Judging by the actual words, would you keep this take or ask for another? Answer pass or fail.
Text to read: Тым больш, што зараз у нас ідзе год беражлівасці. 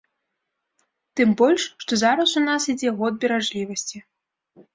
pass